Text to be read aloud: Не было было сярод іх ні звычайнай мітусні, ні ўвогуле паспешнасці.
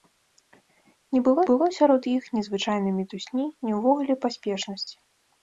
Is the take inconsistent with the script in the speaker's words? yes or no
no